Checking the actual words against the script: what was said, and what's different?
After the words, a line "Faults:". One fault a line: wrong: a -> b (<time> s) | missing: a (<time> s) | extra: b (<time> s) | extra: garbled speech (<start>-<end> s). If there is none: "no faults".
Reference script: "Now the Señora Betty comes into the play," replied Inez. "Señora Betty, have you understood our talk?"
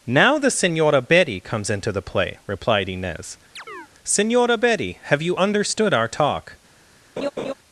"Now the Señora Betty comes into the play," replied Inez. "Señora Betty, have you understood our talk?"
Faults:
no faults